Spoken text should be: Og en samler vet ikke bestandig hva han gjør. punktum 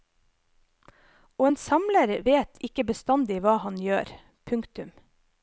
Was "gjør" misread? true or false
false